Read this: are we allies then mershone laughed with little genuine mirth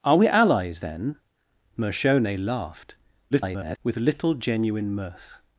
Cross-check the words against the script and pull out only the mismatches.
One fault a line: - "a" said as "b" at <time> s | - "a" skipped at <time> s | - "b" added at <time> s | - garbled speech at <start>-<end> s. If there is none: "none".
- garbled speech at 3.3-3.8 s